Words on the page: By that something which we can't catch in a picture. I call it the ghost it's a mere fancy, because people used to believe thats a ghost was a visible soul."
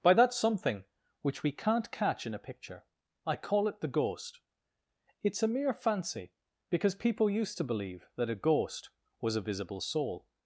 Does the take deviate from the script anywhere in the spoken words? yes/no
yes